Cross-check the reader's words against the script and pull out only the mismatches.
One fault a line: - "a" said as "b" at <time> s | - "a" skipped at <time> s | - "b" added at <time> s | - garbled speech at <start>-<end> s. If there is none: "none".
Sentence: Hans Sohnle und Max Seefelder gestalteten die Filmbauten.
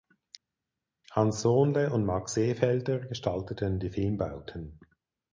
none